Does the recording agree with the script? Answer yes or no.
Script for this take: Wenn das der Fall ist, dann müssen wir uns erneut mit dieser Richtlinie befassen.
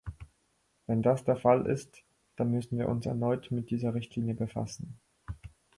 yes